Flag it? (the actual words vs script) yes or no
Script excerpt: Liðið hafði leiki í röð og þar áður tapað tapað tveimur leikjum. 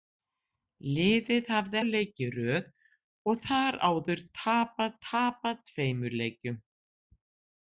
no